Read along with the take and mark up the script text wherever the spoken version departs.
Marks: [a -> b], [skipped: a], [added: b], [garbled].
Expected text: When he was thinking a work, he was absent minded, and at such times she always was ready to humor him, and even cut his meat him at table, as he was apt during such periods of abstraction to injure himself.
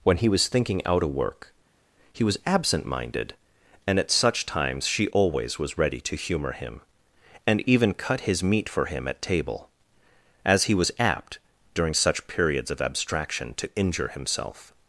When he was thinking [added: out] a work, he was absent minded, and at such times she always was ready to humor him, and even cut his meat [added: for] him at table, as he was apt during such periods of abstraction to injure himself.